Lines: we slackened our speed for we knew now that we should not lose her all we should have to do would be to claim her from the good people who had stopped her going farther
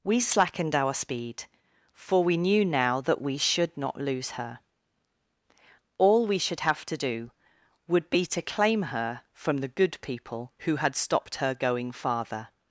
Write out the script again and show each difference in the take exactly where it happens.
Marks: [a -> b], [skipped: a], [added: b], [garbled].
we slackened our speed for we knew now that we should not lose her all we should have to do would be to claim her from the good people who had stopped her going farther